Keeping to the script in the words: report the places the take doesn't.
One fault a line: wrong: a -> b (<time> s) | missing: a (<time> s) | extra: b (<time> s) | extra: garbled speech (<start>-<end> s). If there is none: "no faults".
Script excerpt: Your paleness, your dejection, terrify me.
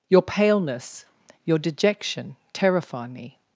no faults